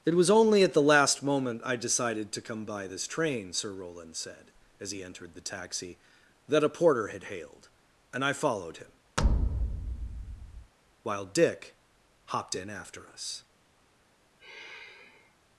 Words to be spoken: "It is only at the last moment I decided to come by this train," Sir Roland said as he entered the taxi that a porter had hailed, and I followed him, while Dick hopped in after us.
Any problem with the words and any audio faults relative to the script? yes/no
yes